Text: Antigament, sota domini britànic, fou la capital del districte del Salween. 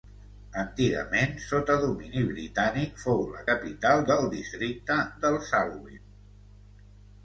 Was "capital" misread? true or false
false